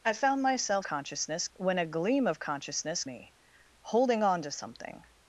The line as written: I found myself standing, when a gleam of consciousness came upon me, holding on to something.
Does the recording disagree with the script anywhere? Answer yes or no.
yes